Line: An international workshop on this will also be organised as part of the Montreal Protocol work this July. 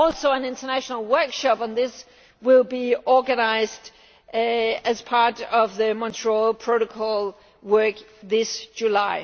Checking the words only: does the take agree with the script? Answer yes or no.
yes